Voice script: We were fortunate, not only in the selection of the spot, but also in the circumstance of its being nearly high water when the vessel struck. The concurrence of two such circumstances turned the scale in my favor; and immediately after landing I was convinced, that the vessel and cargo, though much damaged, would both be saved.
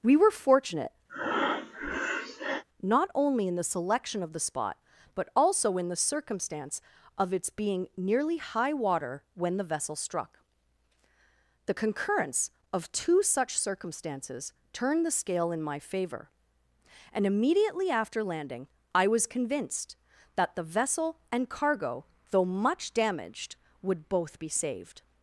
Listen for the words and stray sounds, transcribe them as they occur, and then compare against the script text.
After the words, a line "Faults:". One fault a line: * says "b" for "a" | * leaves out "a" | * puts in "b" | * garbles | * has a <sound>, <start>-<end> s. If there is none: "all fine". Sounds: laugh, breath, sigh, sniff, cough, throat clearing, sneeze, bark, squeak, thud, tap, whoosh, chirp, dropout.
We were fortunate, not only in the selection of the spot, but also in the circumstance of its being nearly high water when the vessel struck. The concurrence of two such circumstances turned the scale in my favor; and immediately after landing I was convinced, that the vessel and cargo, though much damaged, would both be saved.
Faults:
* has a breath, 1.1-2.6 s